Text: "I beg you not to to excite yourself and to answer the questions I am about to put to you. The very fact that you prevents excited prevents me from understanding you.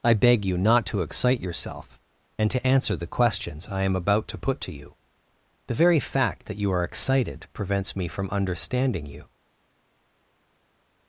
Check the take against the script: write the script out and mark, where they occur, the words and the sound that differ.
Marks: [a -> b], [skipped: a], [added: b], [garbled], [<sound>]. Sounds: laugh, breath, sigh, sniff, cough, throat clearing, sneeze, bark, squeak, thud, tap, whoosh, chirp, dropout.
"I beg you not to [skipped: to] excite yourself and to answer the questions I am about to put to you. The very fact that you [prevents -> are] excited prevents me from understanding you.